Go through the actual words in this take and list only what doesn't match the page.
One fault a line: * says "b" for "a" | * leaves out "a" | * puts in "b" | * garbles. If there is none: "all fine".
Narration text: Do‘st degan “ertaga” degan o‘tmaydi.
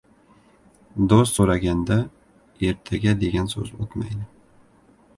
* says "so‘raganda" for "degan"
* puts in "so‘z"